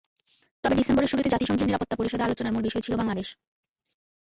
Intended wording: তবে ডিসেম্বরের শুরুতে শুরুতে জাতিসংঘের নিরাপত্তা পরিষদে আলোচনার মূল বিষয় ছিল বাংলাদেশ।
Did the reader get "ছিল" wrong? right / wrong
right